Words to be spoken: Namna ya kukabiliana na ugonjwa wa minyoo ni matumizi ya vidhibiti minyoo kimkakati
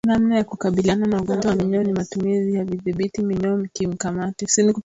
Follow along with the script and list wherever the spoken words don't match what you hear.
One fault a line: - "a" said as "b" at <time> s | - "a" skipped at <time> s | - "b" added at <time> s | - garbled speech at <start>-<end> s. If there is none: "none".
none